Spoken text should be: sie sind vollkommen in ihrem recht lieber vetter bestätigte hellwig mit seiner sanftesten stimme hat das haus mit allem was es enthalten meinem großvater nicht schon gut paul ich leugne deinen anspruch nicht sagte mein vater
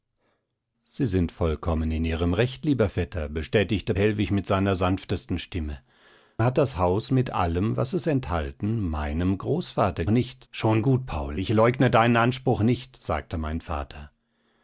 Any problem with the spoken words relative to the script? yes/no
no